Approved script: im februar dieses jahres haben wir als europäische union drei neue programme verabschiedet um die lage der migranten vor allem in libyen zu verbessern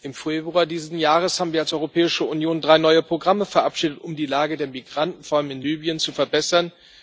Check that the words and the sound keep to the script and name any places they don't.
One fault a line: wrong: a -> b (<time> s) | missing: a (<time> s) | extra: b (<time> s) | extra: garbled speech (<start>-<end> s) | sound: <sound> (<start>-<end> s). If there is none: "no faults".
no faults